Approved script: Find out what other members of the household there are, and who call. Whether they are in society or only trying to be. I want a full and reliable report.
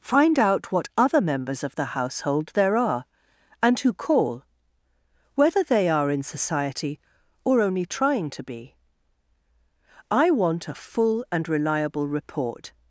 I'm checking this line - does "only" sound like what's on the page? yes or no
yes